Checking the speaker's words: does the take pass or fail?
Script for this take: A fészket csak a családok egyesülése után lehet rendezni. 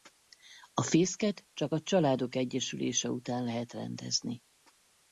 pass